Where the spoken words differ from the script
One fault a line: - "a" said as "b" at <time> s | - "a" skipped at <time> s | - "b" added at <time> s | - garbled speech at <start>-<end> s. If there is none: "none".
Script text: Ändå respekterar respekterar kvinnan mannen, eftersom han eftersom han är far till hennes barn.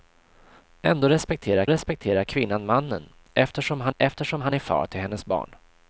none